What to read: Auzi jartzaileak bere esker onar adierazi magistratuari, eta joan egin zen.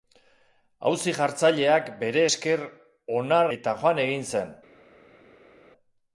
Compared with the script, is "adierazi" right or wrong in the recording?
wrong